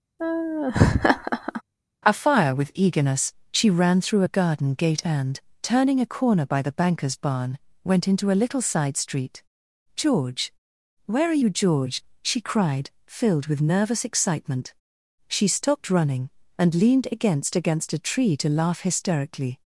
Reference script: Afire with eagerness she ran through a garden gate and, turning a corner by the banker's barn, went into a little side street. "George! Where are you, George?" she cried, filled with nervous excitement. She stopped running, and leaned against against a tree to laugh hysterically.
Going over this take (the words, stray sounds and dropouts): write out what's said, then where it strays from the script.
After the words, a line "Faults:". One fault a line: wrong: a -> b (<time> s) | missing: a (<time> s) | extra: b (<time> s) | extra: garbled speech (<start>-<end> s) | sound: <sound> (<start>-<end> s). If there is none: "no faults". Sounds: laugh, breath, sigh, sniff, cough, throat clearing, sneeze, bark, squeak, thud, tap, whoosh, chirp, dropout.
Afire with eagerness she ran through a garden gate and, turning a corner by the banker's barn, went into a little side street. "George! Where are you, George?" she cried, filled with nervous excitement. She stopped running, and leaned against against a tree to laugh hysterically.
Faults:
sound: laugh (0.2-1.6 s)